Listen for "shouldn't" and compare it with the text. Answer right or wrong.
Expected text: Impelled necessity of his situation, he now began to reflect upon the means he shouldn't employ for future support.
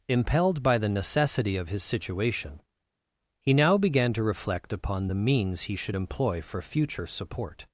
wrong